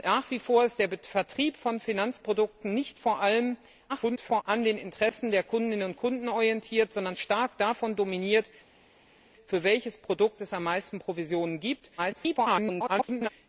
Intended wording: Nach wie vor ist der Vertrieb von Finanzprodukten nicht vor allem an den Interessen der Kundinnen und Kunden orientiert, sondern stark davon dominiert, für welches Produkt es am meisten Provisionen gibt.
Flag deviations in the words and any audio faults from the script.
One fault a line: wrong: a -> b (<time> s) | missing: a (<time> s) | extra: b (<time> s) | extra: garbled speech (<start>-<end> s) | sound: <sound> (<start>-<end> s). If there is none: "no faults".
extra: garbled speech (3.9-4.4 s)
extra: garbled speech (12.0-13.3 s)